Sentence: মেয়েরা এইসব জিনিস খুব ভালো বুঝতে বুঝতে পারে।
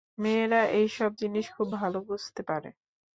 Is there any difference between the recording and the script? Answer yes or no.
yes